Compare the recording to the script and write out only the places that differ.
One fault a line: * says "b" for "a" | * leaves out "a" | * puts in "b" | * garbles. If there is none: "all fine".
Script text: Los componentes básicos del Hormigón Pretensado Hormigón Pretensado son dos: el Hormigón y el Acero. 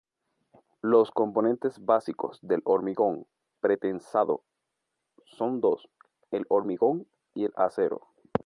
* leaves out "Hormigón Pretensado"